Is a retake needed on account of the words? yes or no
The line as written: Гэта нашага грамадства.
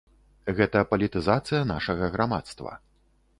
yes